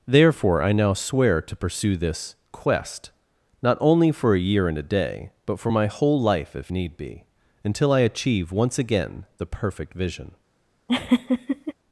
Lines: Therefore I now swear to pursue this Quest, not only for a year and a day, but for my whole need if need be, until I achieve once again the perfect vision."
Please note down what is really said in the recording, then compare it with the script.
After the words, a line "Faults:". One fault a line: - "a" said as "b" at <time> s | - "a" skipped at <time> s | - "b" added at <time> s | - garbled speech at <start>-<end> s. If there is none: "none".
Therefore I now swear to pursue this Quest, not only for a year and a day, but for my whole life if need be, until I achieve once again the perfect vision."
Faults:
- "need" said as "life" at 6.2 s